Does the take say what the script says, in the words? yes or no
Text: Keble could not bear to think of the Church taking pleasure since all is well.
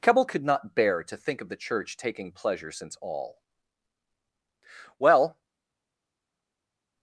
no